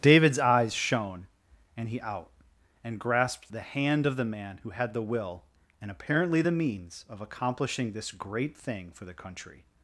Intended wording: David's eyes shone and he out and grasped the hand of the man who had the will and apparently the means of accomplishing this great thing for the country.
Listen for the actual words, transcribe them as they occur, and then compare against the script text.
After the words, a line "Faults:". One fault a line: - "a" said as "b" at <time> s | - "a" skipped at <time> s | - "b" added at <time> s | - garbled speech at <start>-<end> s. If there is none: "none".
David's eyes shone and he out and grasped the hand of the man who had the will and apparently the means of accomplishing this great thing for the country.
Faults:
none